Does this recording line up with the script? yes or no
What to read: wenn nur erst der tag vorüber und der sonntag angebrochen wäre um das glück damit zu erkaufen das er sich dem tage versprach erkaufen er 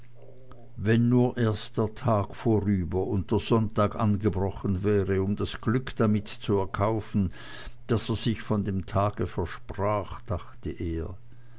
no